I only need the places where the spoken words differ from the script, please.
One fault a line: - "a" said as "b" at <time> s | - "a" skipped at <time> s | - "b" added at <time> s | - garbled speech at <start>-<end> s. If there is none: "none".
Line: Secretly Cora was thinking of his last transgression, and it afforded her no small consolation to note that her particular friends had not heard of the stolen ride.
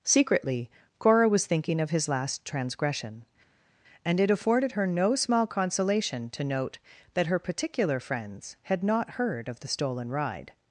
none